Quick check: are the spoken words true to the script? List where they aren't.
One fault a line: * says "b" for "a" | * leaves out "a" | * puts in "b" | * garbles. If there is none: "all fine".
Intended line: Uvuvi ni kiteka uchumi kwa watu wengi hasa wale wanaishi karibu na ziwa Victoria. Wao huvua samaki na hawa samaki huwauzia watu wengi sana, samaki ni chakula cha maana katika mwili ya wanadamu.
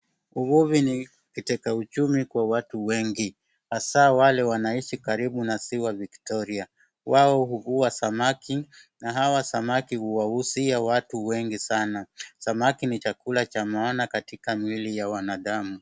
all fine